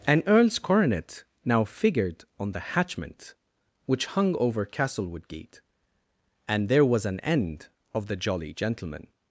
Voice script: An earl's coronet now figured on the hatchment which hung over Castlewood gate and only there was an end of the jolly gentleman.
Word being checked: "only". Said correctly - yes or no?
no